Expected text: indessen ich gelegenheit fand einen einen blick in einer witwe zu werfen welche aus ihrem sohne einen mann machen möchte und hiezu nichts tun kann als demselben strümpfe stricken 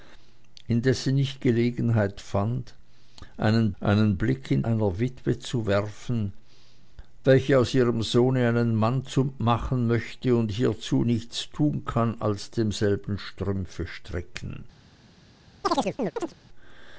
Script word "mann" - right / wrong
right